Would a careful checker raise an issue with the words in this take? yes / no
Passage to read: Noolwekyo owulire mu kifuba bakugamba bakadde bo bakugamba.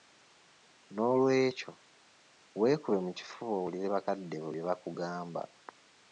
yes